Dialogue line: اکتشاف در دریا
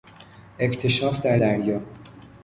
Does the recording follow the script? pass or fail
pass